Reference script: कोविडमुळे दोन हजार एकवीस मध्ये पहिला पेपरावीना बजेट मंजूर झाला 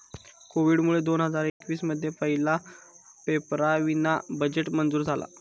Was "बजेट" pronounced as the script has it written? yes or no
yes